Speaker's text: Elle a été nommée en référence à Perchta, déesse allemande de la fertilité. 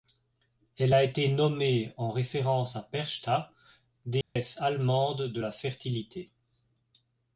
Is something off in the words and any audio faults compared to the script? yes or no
yes